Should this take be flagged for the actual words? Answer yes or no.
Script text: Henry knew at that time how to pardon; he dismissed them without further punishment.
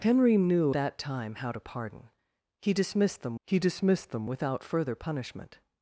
yes